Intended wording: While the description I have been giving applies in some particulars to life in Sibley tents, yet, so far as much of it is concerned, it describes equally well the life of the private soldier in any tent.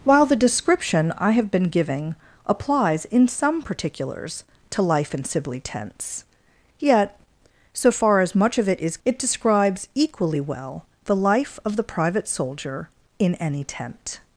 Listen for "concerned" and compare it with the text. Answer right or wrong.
wrong